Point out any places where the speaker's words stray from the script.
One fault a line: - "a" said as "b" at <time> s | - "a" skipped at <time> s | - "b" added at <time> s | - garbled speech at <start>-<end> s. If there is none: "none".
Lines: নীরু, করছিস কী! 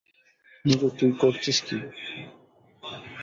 - "তুই" added at 1.0 s